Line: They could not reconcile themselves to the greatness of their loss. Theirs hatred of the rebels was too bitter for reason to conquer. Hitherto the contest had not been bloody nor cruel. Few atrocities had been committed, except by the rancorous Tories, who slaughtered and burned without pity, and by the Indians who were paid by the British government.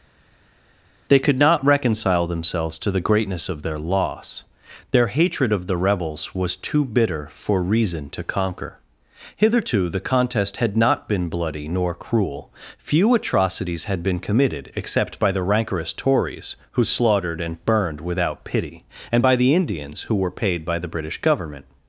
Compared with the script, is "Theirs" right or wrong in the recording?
wrong